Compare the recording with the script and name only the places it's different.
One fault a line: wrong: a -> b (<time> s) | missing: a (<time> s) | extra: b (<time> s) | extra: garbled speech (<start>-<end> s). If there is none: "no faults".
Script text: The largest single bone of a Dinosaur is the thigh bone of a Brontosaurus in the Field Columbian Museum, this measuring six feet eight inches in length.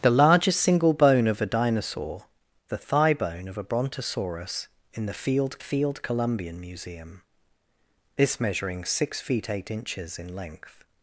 missing: is (2.2 s)
extra: Field (5.6 s)